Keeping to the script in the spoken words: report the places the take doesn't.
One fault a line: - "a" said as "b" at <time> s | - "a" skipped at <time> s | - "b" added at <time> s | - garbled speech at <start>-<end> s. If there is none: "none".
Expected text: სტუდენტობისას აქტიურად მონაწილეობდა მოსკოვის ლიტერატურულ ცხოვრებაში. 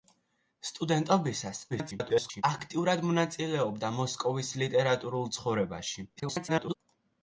- garbled speech at 1.7-2.4 s
- garbled speech at 6.2-6.8 s